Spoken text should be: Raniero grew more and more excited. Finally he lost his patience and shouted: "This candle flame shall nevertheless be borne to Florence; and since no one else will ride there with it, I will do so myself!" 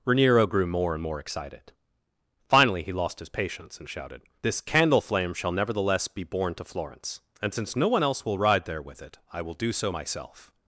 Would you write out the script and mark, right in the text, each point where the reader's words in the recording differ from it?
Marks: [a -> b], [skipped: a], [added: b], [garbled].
Raniero grew more and more excited. Finally he lost his patience and shouted: "This candle flame shall nevertheless be borne to Florence; and since no one else will ride there with it, I will do so myself!"